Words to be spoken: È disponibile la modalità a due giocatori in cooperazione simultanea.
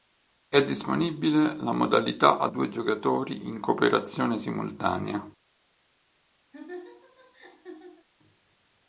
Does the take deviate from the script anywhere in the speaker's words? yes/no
no